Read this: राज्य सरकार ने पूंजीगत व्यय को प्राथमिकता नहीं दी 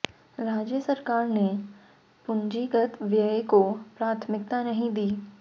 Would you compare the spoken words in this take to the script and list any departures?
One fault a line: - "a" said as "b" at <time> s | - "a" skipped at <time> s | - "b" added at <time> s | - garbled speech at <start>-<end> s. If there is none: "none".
none